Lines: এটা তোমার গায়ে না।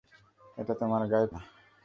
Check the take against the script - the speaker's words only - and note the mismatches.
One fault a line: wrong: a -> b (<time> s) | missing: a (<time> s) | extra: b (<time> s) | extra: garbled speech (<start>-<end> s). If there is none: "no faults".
no faults